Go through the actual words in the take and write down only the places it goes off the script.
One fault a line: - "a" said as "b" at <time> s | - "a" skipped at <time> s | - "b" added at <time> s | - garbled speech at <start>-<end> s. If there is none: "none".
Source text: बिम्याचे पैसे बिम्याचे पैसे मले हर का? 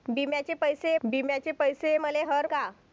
none